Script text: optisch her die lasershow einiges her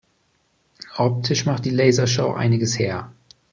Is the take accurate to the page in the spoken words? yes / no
no